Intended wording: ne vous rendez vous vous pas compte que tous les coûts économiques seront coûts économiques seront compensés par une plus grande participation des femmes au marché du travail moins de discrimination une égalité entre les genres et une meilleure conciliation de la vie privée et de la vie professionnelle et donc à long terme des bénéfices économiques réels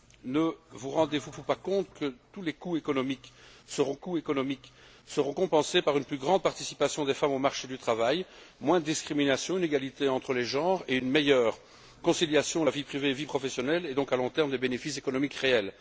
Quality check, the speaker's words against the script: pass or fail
pass